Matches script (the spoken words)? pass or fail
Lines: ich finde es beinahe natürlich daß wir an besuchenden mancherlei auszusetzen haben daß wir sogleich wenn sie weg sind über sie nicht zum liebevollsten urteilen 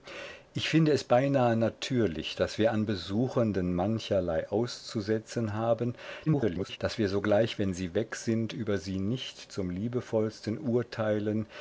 fail